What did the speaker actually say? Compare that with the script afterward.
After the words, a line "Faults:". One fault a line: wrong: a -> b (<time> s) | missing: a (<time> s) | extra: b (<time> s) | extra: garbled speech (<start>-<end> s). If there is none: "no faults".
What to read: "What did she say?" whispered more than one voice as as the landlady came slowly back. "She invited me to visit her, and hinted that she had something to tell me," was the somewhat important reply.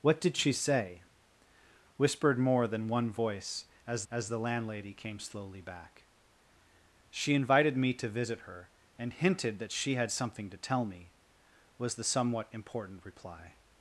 "What did she say?" whispered more than one voice as as the landlady came slowly back. "She invited me to visit her, and hinted that she had something to tell me," was the somewhat important reply.
Faults:
no faults